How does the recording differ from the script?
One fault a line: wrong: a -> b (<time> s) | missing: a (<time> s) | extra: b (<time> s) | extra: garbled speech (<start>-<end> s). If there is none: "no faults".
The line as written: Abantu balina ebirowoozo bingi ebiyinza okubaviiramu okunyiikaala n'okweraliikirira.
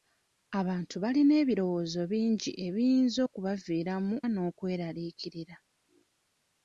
missing: okunyiikaala (4.1 s)